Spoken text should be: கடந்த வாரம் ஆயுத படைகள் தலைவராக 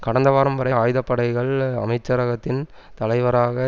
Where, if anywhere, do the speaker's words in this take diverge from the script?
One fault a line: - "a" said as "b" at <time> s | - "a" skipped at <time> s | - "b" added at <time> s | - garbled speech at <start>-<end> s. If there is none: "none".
- "வரை" added at 0.6 s
- "அமைச்சரகத்தின்" added at 1.8 s